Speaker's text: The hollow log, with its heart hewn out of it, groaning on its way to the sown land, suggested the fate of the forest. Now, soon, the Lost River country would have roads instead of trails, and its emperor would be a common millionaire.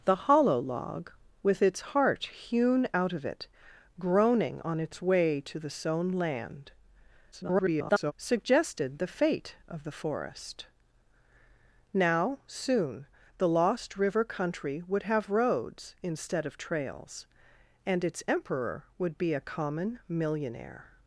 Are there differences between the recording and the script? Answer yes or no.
yes